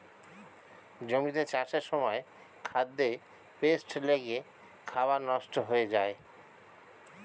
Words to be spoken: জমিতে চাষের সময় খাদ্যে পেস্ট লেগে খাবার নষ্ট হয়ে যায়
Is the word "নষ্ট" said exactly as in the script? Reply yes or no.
yes